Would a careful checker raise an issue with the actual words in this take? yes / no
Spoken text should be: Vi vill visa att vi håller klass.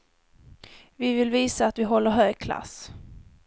yes